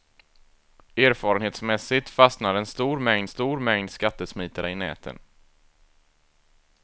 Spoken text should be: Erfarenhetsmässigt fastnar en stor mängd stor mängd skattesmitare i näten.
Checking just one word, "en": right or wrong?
right